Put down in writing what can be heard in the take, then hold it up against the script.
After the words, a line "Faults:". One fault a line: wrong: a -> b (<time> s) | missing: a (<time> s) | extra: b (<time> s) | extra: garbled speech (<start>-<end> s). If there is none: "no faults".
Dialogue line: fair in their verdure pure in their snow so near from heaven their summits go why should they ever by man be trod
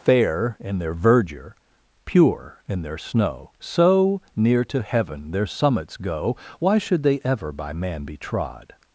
fair in their verdure pure in their snow so near to heaven their summits go why should they ever by man be trod
Faults:
wrong: from -> to (4.7 s)